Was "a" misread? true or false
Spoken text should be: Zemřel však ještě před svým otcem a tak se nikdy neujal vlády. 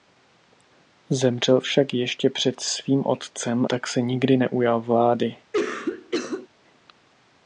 true